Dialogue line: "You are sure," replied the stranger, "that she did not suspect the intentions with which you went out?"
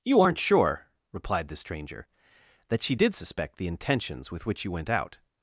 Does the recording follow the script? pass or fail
fail